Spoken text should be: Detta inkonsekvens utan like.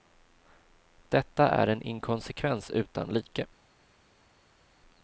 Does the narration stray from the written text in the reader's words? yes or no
yes